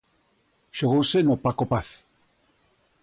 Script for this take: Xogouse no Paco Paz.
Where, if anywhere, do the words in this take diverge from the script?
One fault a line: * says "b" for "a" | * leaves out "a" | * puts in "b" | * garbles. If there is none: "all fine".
all fine